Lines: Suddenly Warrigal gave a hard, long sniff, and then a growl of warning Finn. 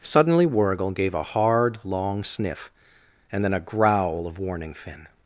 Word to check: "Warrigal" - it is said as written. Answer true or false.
true